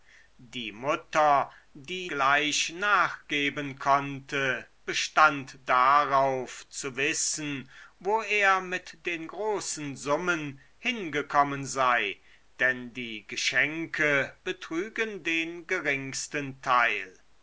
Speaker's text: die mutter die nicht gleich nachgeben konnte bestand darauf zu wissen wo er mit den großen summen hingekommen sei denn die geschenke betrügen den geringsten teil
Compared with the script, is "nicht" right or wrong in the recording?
wrong